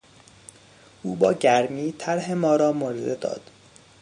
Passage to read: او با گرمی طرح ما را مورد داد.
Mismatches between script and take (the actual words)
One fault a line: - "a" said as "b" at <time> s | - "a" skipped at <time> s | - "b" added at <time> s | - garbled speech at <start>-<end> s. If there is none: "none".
none